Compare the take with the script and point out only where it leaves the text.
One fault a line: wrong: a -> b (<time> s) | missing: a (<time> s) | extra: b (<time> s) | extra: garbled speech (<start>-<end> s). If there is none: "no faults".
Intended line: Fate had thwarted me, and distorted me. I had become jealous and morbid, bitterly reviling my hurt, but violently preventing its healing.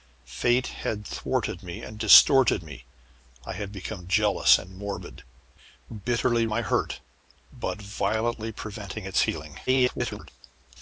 missing: reviling (6.5 s)
extra: garbled speech (9.7-10.3 s)